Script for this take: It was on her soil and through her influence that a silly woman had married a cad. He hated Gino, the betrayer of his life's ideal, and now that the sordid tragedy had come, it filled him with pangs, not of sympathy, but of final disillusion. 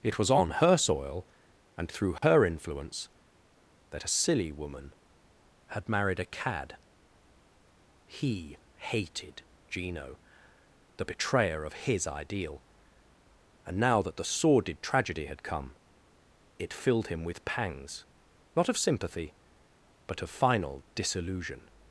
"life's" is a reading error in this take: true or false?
true